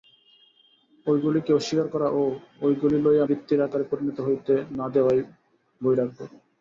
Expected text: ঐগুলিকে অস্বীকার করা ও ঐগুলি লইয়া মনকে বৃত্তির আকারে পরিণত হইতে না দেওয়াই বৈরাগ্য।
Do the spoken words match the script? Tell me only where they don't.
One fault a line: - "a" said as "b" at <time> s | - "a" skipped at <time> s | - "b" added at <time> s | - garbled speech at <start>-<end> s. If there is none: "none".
- "মনকে" skipped at 3.2 s